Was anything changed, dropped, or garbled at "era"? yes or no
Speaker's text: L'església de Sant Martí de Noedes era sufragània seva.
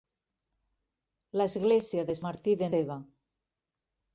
yes